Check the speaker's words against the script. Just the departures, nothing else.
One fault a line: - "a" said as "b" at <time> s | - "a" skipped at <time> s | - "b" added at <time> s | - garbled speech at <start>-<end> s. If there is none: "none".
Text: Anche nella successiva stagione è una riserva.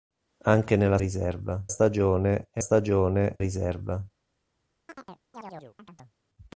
- "successiva" said as "riserva" at 1.0 s
- "una" said as "stagione" at 2.6 s